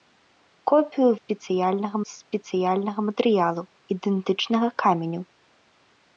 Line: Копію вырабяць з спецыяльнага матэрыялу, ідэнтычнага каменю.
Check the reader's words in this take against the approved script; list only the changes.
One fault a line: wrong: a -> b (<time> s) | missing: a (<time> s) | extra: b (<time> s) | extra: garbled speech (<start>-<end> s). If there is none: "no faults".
wrong: вырабяць -> спецыяльнага (1.2 s)